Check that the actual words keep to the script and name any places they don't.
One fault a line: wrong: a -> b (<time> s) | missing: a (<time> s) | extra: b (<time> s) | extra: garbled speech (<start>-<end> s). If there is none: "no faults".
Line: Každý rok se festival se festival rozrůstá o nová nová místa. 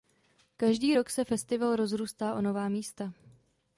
missing: se festival (1.8 s)
missing: nová (2.7 s)